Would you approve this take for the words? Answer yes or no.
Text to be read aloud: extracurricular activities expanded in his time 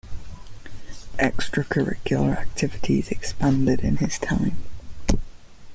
yes